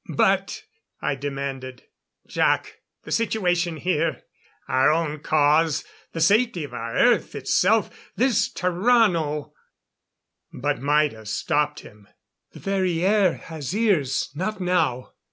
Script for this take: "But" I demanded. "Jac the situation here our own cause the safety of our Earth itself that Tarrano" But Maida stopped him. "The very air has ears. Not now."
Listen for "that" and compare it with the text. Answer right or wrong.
wrong